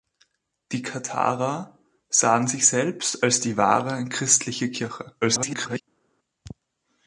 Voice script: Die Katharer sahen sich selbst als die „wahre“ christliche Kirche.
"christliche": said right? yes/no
yes